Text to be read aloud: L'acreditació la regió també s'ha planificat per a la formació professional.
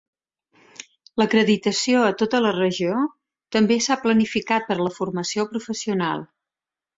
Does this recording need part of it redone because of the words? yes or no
yes